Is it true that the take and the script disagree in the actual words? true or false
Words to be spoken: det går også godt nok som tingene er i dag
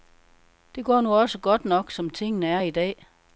true